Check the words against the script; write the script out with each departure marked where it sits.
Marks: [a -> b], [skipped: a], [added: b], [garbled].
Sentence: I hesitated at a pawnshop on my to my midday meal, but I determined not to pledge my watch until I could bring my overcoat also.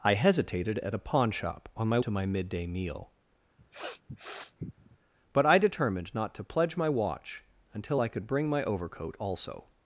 I hesitated at a pawnshop on my to my midday meal, but I determined not to pledge my watch until I could bring my overcoat also.